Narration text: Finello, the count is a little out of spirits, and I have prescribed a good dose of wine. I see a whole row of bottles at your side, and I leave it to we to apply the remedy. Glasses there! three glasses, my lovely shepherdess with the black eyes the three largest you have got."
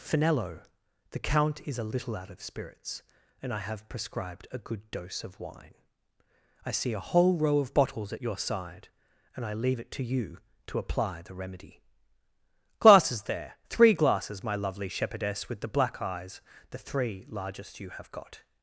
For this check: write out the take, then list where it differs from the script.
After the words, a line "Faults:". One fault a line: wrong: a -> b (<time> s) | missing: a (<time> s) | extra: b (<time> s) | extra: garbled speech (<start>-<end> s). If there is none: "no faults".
Finello, the count is a little out of spirits, and I have prescribed a good dose of wine. I see a whole row of bottles at your side, and I leave it to you to apply the remedy. Glasses there! three glasses, my lovely shepherdess with the black eyes the three largest you have got."
Faults:
wrong: we -> you (10.0 s)